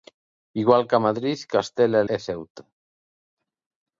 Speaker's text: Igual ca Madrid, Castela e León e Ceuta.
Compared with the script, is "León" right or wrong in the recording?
wrong